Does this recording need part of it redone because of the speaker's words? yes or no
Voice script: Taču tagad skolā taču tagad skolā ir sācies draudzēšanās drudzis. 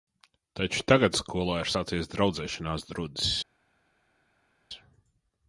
yes